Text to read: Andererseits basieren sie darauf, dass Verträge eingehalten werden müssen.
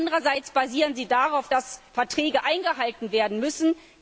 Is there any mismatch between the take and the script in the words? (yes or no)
no